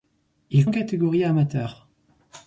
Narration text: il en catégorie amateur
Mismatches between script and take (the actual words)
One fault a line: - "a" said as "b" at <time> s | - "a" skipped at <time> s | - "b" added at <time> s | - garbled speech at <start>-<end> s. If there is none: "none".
none